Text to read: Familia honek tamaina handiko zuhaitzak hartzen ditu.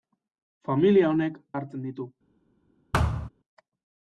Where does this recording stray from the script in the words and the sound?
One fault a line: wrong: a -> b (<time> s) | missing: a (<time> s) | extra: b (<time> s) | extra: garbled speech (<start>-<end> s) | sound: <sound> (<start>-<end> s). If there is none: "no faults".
missing: tamaina handiko zuhaitzak (1.4 s)
sound: thud (2.9-3.3 s)